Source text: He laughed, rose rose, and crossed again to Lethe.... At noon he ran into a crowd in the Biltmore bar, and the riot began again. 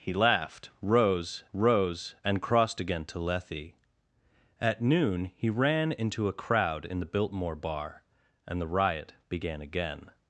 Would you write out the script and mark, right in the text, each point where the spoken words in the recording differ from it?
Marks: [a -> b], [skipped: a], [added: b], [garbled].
He laughed, rose rose, and crossed again to Lethe.... At noon he ran into a crowd in the Biltmore bar, and the riot began again.